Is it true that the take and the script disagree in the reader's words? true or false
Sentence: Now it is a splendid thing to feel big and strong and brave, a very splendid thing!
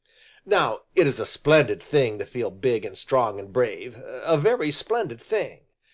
false